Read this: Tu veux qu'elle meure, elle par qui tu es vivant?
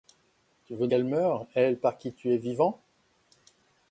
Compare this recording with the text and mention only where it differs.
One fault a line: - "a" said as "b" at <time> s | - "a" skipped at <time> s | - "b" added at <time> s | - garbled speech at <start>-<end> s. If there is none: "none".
none